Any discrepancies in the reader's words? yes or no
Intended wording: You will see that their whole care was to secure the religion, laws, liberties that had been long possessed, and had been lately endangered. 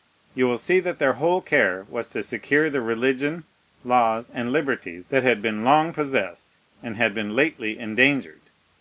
yes